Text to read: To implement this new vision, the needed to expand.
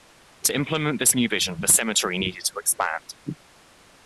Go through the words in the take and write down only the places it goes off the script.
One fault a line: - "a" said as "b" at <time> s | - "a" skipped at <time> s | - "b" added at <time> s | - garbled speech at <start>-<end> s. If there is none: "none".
- "cemetery" added at 1.7 s